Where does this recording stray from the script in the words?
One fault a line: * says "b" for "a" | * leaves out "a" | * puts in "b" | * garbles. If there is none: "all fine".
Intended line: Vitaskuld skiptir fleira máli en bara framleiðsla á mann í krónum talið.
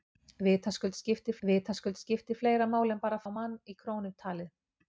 * puts in "vitaskuld skiptir"
* leaves out "framleiðsla"